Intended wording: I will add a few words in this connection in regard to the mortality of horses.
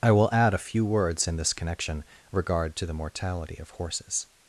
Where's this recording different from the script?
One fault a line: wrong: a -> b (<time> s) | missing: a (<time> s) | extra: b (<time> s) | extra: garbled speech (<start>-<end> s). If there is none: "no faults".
missing: in (2.0 s)